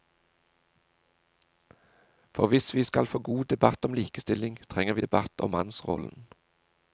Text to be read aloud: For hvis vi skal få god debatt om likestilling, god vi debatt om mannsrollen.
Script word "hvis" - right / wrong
right